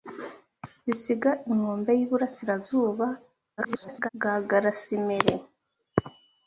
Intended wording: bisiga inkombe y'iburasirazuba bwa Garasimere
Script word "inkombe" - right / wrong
right